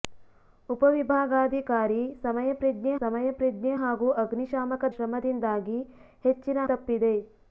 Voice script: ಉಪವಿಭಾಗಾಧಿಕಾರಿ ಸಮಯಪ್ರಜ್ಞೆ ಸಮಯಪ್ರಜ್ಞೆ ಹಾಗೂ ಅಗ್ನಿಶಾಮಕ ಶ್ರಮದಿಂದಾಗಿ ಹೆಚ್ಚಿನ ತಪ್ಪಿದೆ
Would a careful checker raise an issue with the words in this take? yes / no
no